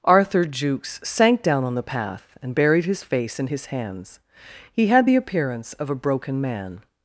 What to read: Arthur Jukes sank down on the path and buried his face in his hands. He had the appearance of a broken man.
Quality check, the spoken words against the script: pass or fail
pass